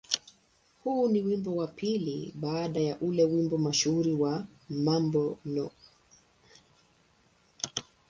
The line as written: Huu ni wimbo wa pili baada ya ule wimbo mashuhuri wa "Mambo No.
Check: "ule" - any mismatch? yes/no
no